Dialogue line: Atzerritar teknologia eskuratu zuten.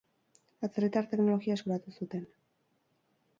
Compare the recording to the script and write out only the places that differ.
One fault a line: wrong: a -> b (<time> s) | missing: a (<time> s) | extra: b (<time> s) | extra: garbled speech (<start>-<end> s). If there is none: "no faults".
no faults